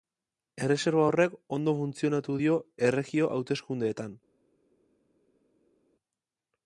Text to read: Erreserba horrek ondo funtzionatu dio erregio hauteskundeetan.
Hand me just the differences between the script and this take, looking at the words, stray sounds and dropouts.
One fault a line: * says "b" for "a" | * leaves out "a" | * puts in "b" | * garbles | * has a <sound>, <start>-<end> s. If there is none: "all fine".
all fine